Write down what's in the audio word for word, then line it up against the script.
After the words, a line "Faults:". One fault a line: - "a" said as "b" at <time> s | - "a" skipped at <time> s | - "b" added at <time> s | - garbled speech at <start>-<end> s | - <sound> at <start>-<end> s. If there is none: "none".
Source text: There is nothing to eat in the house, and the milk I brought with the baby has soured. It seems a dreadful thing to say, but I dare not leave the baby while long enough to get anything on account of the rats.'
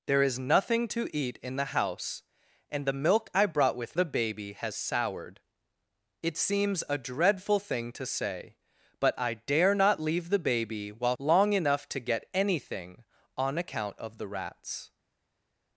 There is nothing to eat in the house, and the milk I brought with the baby has soured. It seems a dreadful thing to say, but I dare not leave the baby while long enough to get anything on account of the rats.'
Faults:
none